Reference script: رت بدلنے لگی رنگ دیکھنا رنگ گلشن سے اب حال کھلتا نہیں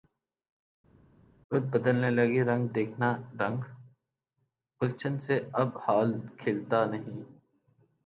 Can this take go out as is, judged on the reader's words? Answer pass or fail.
pass